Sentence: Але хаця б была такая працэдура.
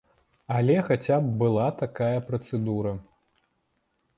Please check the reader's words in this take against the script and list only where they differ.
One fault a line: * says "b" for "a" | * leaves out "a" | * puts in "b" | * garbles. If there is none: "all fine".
all fine